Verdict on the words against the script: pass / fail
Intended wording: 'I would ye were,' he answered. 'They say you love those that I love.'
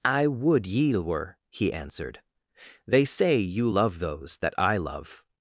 pass